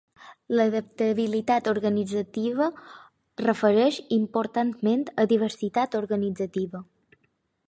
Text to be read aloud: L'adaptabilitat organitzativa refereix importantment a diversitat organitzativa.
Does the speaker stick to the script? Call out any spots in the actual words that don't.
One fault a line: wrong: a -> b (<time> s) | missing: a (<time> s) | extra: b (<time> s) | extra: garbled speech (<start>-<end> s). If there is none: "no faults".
no faults